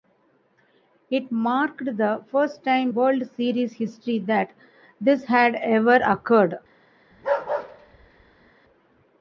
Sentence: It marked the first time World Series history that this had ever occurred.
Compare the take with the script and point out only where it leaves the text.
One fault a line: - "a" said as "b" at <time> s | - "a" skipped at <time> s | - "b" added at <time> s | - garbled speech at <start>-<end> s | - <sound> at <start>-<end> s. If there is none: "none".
- bark at 7.1-8.5 s